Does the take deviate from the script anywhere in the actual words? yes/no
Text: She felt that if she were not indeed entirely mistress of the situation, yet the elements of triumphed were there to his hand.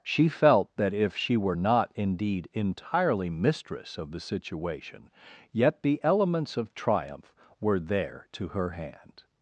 yes